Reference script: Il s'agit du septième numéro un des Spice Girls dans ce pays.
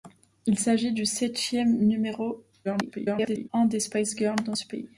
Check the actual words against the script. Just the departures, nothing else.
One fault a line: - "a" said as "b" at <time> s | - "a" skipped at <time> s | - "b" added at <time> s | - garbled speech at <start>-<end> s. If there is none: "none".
- garbled speech at 2.6-3.5 s